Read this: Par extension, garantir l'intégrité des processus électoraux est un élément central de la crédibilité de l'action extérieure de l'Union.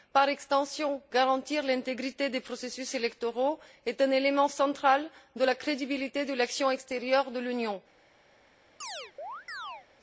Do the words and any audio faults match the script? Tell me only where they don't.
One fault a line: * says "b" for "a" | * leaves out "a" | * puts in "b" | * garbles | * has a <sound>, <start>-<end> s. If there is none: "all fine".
* has a chirp, 8.8-9.9 s